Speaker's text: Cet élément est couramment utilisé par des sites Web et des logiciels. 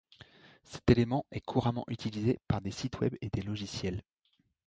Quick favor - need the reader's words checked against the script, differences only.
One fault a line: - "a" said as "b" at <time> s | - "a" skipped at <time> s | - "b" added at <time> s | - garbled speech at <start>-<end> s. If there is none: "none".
none